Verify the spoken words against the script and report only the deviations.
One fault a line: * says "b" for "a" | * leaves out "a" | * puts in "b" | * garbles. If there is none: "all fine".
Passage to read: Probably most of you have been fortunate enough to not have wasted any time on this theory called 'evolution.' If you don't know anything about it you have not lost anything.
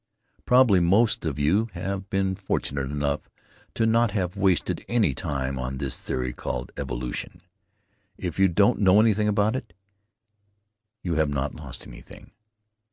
all fine